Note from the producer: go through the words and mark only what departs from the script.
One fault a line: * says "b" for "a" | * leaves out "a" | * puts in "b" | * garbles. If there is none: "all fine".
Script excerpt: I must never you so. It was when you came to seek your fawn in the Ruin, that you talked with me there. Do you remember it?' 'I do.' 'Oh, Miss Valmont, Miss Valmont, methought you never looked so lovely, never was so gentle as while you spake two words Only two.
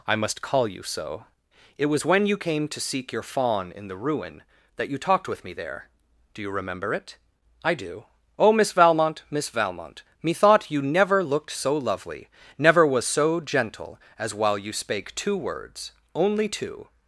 * says "call" for "never"